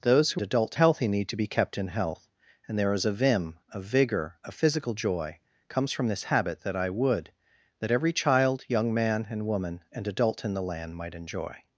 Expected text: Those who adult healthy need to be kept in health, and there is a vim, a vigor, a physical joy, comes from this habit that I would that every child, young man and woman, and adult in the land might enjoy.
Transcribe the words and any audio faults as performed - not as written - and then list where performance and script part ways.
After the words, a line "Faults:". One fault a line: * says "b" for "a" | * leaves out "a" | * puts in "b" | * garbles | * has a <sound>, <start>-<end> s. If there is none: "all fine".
Those who adult healthy need to be kept in health, and there is a vim, a vigor, a physical joy, comes from this habit that I would that every child, young man and woman, and adult in the land might enjoy.
Faults:
all fine